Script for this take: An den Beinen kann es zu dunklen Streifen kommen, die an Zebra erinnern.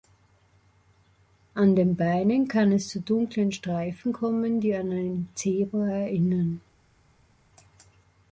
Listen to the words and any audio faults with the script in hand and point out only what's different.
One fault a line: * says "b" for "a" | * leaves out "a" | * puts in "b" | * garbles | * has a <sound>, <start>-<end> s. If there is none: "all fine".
* puts in "ein"